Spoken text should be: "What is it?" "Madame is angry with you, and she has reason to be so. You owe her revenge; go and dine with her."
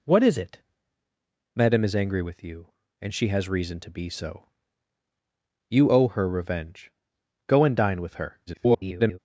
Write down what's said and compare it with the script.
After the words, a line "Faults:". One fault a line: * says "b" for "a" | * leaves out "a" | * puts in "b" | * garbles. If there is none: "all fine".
"What is it?" "Madame is angry with you, and she has reason to be so. You owe her revenge; go and dine with her." [garbled]
Faults:
* garbles